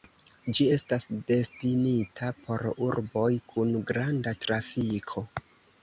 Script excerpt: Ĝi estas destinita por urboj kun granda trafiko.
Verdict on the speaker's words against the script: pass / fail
pass